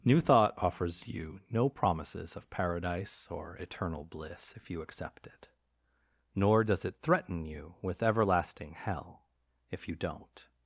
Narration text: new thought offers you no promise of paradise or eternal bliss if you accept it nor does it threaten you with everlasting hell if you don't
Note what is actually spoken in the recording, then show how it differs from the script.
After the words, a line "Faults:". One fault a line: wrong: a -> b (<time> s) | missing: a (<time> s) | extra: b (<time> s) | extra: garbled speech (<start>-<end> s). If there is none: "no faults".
new thought offers you no promises of paradise or eternal bliss if you accept it nor does it threaten you with everlasting hell if you don't
Faults:
wrong: promise -> promises (1.7 s)